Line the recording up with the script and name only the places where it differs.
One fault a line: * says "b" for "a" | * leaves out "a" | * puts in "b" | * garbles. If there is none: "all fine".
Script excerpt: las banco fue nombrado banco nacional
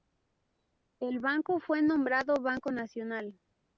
* says "el" for "las"